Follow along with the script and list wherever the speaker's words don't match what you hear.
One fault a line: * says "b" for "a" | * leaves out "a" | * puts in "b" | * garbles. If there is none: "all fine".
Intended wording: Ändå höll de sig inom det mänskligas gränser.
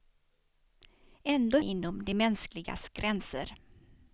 * leaves out "höll de sig"